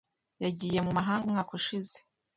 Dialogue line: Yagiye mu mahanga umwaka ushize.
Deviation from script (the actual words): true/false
false